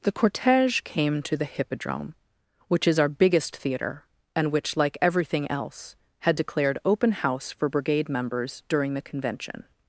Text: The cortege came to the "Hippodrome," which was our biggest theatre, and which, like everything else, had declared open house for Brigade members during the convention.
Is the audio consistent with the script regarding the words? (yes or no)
no